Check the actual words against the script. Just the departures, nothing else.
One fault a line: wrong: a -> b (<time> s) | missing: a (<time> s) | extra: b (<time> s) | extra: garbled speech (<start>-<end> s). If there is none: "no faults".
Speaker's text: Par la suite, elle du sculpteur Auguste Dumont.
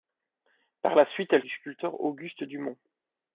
no faults